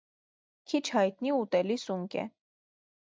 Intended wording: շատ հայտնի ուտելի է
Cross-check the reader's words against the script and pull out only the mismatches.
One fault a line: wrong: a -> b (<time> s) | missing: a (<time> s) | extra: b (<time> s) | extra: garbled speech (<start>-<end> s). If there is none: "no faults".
wrong: շատ -> քիչ (0.7 s)
extra: սունկ (1.8 s)